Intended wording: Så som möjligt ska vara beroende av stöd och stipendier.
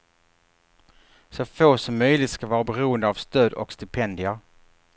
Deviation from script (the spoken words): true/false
true